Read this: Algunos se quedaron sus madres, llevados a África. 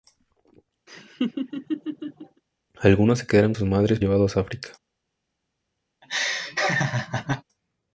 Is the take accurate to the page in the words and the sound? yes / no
no